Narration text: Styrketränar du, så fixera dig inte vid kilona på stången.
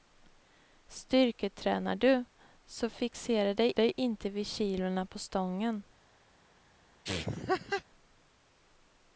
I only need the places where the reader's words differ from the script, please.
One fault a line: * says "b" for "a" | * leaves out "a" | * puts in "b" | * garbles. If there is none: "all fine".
* puts in "dig"